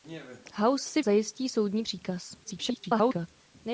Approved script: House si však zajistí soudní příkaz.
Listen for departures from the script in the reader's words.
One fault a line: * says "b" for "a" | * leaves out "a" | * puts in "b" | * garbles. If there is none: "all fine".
* leaves out "však"
* garbles